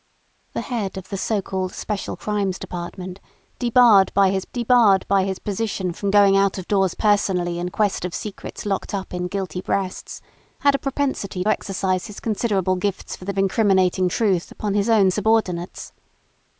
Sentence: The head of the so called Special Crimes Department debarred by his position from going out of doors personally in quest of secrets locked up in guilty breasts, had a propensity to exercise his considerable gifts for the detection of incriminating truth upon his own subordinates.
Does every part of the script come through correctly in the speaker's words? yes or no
no